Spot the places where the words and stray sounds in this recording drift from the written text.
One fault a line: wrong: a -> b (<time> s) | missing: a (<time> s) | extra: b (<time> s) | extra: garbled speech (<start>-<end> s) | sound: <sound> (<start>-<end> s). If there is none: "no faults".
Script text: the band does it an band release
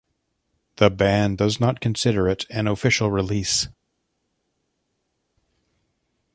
extra: not consider (1.6 s)
wrong: band -> official (2.7 s)